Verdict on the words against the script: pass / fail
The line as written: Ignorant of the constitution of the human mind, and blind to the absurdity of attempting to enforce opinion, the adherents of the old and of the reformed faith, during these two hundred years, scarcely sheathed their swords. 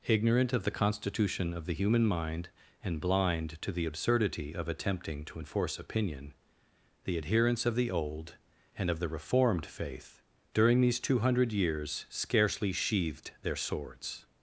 pass